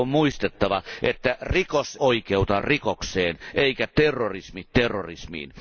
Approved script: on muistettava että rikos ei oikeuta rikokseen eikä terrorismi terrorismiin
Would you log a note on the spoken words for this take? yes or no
yes